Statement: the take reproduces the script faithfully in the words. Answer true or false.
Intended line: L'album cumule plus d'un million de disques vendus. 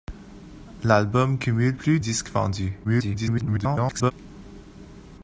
false